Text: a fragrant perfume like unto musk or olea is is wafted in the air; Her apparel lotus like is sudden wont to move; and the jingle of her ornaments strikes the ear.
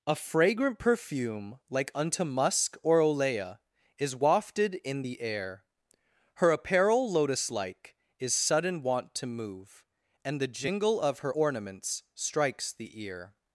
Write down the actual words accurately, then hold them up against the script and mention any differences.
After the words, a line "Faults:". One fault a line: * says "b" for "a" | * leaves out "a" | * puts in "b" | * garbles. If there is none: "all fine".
a fragrant perfume like unto musk or olea is wafted in the air; Her apparel lotus like is sudden wont to move; and the jingle of her ornaments strikes the ear.
Faults:
* leaves out "is"